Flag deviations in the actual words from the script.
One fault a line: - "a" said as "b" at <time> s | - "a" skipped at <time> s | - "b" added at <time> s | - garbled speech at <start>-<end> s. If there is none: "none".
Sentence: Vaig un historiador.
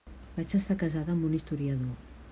- "estar casada amb" added at 0.6 s